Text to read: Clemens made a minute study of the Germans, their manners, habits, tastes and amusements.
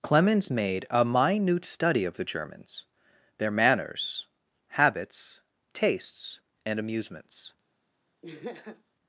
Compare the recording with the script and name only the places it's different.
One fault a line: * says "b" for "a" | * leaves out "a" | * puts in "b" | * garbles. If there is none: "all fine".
all fine